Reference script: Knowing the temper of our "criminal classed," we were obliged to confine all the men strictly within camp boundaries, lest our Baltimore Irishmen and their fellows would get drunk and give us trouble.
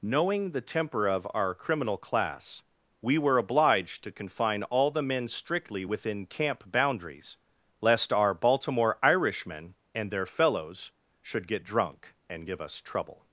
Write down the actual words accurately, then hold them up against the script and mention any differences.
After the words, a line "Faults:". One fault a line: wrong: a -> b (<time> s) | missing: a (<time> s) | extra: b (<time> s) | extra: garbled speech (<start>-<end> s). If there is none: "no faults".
Knowing the temper of our "criminal class," we were obliged to confine all the men strictly within camp boundaries, lest our Baltimore Irishmen and their fellows should get drunk and give us trouble.
Faults:
wrong: classed -> class (1.9 s)
wrong: would -> should (11.2 s)